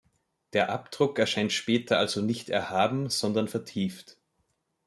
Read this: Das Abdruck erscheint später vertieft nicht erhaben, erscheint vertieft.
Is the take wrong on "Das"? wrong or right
wrong